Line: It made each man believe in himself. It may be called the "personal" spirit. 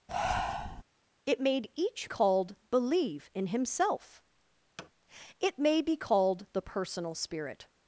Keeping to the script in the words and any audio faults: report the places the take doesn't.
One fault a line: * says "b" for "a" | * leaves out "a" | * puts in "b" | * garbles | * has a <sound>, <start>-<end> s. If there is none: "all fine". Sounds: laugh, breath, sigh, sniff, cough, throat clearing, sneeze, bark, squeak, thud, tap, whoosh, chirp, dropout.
* has a breath, 0.1-0.8 s
* says "called" for "man"
* has a thud, 4.8-4.9 s